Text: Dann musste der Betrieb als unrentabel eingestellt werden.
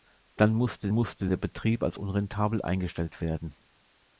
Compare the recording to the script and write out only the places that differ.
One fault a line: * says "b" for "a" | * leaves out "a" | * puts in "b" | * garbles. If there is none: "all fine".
* puts in "musste"